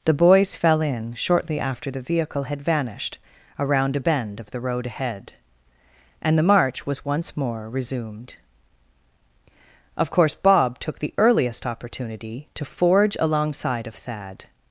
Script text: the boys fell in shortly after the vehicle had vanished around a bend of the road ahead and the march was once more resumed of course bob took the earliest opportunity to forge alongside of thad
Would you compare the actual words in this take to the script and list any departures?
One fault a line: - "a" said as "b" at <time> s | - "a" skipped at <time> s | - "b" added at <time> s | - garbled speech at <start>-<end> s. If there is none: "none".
none